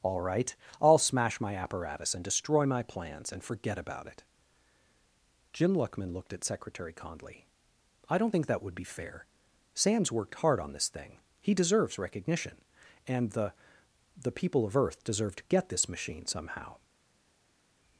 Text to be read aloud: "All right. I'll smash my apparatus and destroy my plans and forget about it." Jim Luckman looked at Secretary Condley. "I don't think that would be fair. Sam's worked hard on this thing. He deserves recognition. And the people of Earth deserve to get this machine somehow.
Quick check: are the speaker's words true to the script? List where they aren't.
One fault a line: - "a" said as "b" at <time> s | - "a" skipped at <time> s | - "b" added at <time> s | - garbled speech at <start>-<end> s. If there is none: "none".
- "the" added at 14.2 s